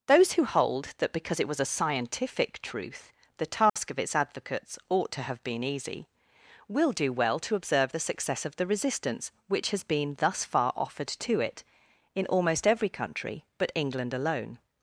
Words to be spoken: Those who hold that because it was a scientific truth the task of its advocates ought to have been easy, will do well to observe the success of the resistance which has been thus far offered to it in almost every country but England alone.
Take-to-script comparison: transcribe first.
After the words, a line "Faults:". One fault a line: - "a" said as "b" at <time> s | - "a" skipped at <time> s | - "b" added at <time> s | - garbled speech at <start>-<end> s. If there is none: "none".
Those who hold that because it was a scientific truth the task of its advocates ought to have been easy, will do well to observe the success of the resistance which has been thus far offered to it in almost every country but England alone.
Faults:
none